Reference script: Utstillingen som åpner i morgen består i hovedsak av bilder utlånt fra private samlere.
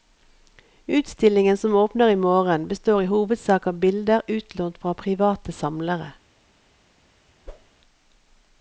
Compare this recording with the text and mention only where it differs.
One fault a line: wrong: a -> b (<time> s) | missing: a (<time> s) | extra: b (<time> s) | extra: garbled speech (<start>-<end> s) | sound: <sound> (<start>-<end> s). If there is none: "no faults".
sound: whoosh (7.5-7.7 s)